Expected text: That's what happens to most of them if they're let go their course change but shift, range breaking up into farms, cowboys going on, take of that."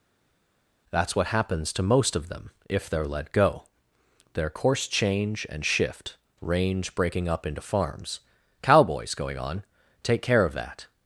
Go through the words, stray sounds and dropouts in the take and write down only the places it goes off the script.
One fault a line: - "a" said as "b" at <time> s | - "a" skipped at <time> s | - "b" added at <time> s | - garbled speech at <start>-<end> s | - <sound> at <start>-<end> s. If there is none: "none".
- "but" said as "and" at 5.5 s
- "care" added at 10.2 s